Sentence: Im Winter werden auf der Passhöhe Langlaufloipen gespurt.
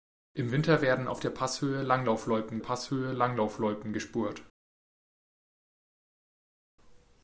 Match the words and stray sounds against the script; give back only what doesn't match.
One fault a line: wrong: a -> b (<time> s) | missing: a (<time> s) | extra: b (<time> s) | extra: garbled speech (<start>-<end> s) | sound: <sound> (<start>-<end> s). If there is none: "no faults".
extra: Passhöhe Langlaufloipen (2.6 s)